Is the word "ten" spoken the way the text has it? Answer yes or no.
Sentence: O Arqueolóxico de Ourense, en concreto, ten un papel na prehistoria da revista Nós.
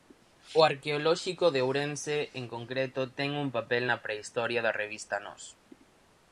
yes